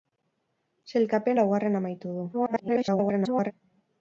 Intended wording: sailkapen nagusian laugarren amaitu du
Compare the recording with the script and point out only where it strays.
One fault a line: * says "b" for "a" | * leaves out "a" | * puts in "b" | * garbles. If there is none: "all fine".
* leaves out "nagusian"
* garbles